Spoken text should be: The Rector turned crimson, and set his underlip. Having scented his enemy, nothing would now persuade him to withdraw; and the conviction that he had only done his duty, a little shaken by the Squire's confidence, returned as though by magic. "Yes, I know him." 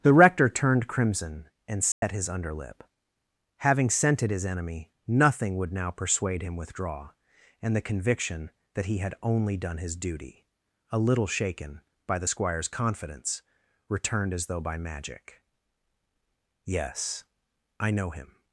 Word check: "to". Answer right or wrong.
wrong